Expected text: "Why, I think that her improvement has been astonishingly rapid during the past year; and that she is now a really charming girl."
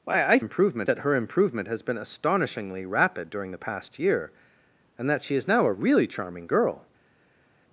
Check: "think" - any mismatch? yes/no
yes